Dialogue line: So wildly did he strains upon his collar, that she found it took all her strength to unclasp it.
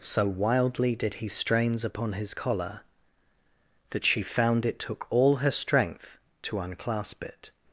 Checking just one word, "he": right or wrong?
right